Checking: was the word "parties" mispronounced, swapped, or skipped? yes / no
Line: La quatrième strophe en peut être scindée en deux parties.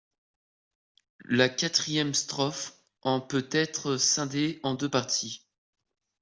no